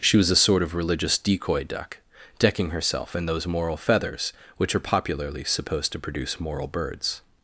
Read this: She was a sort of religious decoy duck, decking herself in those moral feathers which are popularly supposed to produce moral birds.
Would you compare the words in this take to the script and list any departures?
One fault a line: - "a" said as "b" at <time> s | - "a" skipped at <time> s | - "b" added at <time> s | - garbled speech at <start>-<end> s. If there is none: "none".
none